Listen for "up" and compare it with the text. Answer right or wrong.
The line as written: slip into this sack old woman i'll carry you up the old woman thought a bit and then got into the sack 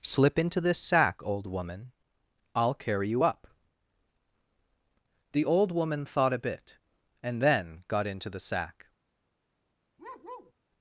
right